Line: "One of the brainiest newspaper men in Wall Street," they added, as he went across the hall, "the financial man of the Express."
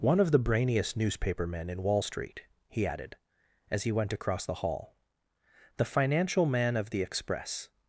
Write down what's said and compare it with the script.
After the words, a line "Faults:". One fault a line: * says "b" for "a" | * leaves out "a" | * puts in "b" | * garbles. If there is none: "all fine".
"One of the brainiest newspaper men in Wall Street," he added, as he went across the hall, "the financial man of the Express."
Faults:
* says "he" for "they"